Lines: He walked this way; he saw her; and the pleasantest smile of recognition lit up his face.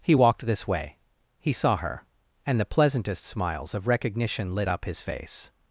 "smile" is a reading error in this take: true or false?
true